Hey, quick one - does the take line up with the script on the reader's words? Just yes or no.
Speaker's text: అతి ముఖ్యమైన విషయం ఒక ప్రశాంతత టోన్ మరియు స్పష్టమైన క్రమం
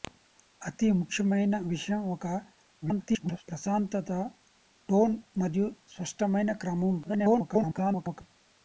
no